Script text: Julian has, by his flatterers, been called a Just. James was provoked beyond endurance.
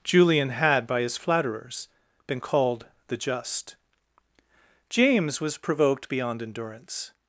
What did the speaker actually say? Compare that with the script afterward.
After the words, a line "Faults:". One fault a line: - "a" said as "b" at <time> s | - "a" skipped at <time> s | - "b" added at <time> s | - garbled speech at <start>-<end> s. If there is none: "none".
Julian had, by his flatterers, been called the Just. James was provoked beyond endurance.
Faults:
- "has" said as "had" at 0.5 s
- "a" said as "the" at 3.1 s